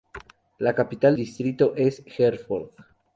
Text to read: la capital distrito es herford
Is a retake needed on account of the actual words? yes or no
no